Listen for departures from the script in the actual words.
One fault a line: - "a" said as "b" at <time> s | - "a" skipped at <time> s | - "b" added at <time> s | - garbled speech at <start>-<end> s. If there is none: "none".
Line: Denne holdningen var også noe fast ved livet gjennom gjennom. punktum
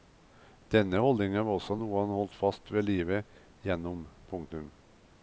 - "han holdt" added at 2.0 s
- "gjennom" skipped at 4.1 s